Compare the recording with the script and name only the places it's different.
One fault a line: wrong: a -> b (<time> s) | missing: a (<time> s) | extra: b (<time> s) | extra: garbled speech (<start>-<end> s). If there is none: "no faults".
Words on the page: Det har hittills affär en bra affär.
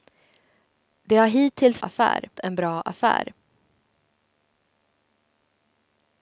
no faults